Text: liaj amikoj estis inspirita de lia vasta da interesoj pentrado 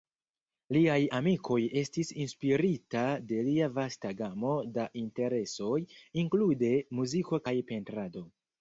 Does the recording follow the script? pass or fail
fail